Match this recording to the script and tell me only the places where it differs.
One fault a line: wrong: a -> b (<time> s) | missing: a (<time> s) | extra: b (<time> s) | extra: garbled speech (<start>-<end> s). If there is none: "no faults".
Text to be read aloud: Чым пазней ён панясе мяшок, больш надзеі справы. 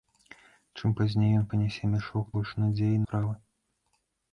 no faults